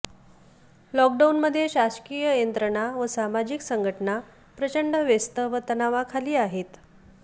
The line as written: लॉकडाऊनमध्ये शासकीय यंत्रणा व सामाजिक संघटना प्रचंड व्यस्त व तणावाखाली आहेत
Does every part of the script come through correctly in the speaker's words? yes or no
yes